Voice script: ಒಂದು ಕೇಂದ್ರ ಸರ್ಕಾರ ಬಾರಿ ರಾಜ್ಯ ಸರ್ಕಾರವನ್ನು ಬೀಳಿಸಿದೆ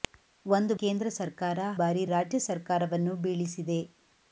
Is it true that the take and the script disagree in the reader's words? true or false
false